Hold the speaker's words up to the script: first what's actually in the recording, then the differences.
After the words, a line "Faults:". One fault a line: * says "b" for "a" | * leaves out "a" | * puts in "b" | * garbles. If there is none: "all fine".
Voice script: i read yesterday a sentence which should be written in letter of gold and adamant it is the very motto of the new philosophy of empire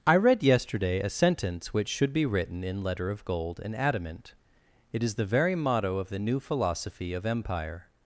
i read yesterday a sentence which should be written in letter of gold and adamant it is the very motto of the new philosophy of empire
Faults:
all fine